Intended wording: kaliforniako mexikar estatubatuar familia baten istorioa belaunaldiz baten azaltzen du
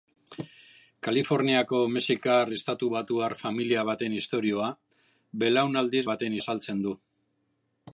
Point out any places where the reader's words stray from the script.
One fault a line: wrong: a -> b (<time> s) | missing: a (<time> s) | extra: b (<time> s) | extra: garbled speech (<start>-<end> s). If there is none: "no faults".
no faults